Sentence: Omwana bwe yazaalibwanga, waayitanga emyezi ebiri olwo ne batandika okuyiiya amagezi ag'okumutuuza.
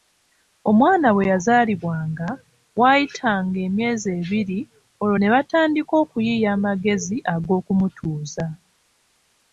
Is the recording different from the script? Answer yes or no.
no